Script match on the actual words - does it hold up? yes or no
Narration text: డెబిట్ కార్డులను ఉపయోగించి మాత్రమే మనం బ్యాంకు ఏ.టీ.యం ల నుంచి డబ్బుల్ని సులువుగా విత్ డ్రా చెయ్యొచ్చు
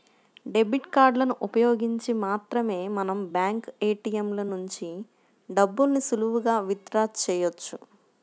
yes